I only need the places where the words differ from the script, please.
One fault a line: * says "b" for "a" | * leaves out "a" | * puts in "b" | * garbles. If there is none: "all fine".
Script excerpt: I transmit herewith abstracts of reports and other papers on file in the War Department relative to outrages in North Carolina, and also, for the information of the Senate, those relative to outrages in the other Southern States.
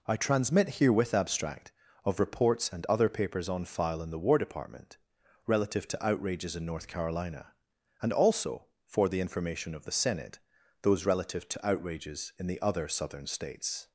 * says "abstract" for "abstracts"